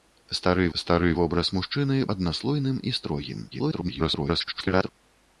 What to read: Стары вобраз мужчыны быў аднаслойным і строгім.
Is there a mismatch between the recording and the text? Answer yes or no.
yes